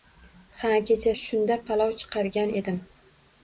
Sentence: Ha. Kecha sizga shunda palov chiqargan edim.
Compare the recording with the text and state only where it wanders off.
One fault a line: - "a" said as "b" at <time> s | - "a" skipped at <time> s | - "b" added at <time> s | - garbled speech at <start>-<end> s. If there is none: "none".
- "sizga" skipped at 1.1 s